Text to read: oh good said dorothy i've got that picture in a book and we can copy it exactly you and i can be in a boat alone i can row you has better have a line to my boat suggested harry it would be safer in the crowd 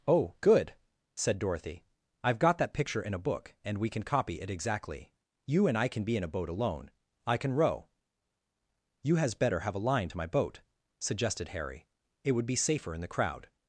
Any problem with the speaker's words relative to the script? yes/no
no